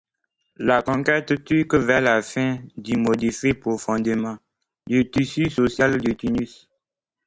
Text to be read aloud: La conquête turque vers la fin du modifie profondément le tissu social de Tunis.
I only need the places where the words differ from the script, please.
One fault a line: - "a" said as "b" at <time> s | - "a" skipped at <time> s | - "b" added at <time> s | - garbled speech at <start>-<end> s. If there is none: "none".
none